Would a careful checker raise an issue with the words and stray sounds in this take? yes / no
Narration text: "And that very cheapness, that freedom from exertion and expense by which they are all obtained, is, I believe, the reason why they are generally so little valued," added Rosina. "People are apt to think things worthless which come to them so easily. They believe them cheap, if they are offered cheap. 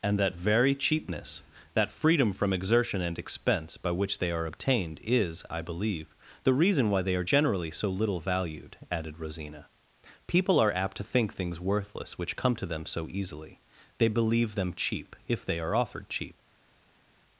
yes